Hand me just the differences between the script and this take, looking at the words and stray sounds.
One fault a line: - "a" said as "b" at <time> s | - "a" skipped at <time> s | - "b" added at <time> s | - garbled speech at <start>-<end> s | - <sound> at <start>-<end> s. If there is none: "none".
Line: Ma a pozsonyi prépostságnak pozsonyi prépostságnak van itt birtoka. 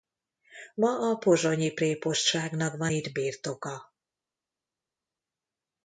- "pozsonyi prépostságnak" skipped at 2.8 s